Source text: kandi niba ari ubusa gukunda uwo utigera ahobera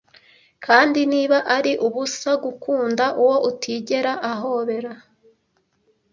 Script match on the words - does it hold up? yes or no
yes